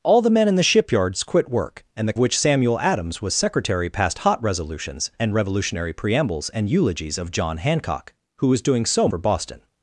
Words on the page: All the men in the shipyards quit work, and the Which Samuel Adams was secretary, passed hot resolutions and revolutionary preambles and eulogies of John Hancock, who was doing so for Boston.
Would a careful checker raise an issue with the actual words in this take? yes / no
no